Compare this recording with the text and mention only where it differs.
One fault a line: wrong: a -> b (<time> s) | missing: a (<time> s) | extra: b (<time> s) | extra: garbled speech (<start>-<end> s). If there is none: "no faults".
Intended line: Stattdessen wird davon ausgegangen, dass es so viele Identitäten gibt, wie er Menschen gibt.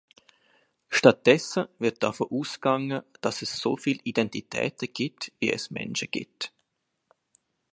wrong: er -> es (5.5 s)